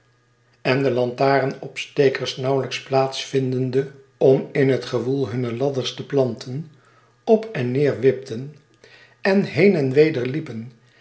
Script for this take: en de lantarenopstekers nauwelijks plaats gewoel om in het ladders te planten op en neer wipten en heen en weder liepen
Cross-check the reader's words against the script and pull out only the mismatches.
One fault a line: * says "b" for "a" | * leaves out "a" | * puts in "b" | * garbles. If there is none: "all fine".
* says "vindende" for "gewoel"
* puts in "gewoel hunne"